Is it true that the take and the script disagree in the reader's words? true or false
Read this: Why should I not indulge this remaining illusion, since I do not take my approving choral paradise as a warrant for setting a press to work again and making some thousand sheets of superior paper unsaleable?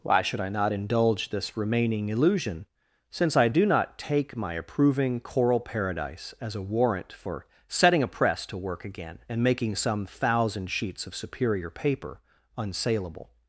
false